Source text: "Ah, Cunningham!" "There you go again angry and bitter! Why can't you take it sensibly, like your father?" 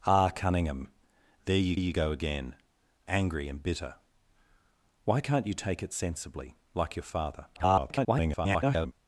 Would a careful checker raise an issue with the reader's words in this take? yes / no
yes